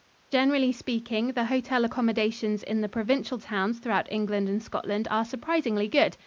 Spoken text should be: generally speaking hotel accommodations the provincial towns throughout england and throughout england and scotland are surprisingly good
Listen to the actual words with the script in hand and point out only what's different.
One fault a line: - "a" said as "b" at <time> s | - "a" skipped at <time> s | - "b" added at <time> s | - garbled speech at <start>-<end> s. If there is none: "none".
- "the" added at 1.3 s
- "in" added at 2.6 s
- "throughout england and" skipped at 4.6 s